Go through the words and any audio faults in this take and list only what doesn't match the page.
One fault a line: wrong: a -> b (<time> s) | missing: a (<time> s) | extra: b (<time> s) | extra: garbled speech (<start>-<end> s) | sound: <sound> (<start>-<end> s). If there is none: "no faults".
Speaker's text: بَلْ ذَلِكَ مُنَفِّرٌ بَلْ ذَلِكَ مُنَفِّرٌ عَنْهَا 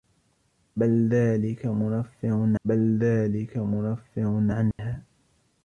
sound: dropout (4.7-4.8 s)